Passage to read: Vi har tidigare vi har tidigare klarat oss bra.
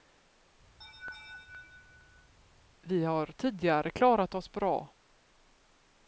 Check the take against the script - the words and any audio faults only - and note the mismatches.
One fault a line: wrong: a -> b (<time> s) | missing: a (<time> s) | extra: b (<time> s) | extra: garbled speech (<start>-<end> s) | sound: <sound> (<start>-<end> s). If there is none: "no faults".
sound: laugh (0.8-2.3 s)
missing: vi har tidigare (3.9 s)